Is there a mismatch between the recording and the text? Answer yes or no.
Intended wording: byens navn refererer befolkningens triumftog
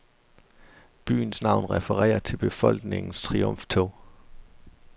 yes